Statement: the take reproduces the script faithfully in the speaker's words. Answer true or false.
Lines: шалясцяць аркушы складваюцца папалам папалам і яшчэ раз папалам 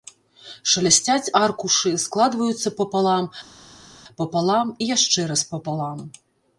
true